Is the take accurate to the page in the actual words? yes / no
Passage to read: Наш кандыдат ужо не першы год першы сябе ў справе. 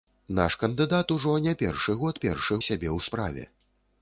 yes